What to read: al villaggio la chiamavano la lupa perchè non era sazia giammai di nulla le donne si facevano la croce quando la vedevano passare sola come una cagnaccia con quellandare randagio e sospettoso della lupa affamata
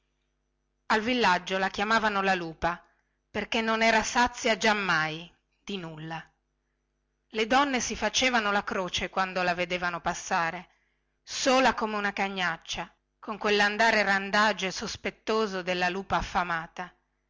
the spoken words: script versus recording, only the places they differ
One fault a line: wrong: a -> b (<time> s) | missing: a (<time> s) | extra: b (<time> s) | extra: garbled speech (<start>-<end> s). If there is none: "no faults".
no faults